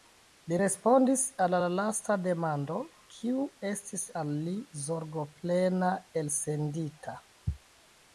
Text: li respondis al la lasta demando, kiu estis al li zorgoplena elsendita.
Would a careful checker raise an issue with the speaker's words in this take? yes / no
no